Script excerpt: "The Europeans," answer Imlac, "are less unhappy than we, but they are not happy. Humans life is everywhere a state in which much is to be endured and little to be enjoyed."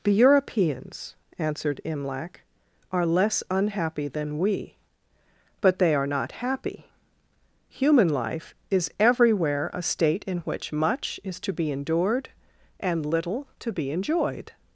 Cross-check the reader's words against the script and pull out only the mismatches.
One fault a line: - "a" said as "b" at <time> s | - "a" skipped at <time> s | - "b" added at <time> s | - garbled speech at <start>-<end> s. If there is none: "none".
- "answer" said as "answered" at 1.4 s
- "Humans" said as "Human" at 7.7 s